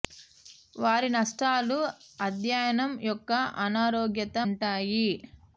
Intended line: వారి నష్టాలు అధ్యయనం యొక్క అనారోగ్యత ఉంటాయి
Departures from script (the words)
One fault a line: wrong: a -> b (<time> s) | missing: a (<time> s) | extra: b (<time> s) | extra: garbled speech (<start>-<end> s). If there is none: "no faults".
no faults